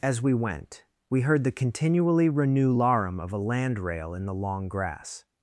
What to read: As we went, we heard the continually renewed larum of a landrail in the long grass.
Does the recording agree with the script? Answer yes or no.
no